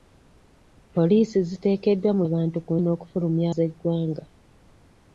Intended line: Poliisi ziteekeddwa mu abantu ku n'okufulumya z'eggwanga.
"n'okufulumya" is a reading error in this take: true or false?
false